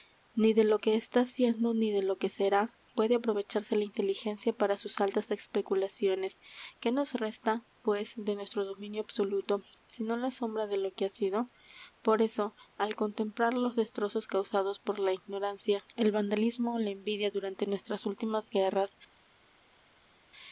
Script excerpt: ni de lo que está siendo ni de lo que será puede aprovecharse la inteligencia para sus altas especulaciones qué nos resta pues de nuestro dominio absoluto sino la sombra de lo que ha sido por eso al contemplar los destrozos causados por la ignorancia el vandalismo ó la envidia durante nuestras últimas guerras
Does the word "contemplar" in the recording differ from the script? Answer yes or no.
no